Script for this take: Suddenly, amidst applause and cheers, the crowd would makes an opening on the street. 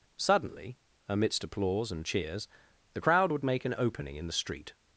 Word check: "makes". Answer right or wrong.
wrong